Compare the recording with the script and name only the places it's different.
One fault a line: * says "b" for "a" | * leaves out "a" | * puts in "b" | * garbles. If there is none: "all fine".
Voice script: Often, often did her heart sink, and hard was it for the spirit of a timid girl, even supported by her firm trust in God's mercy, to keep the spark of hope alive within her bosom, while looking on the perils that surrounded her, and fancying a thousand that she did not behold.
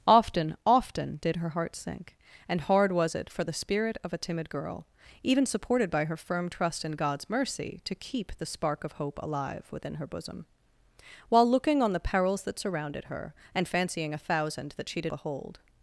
* leaves out "not"